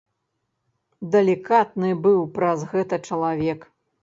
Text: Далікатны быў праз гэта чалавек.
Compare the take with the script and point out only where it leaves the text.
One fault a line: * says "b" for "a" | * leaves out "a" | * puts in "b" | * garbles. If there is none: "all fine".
all fine